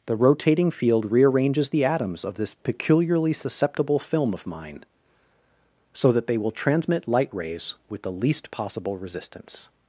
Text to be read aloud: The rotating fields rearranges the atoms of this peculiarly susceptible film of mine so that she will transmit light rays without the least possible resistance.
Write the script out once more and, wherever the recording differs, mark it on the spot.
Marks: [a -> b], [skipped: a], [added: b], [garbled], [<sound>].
The rotating [fields -> field] rearranges the atoms of this peculiarly susceptible film of mine so that [she -> they] will transmit light rays [without -> with] the least possible resistance.